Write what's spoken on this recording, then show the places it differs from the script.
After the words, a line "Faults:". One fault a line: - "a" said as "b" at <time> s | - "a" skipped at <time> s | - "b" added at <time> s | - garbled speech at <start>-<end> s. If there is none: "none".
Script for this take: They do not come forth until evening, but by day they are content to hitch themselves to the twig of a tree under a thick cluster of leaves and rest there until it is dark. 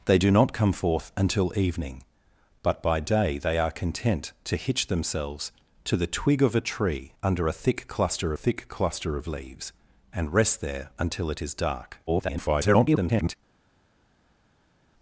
They do not come forth until evening, but by day they are content to hitch themselves to the twig of a tree under a thick cluster thick cluster of leaves and rest there until it is dark. [garbled]
Faults:
- "thick cluster" added at 8.3 s
- garbled speech at 12.1-13.4 s